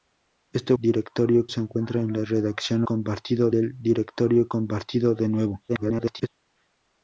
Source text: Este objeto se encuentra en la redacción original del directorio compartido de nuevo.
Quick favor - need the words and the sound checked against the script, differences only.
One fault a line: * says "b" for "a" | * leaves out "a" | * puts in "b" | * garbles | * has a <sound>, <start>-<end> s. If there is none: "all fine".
* says "directorio" for "objeto"
* says "compartido" for "original"
* garbles